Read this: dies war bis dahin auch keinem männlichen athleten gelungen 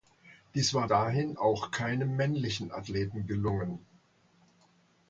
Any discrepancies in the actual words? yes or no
yes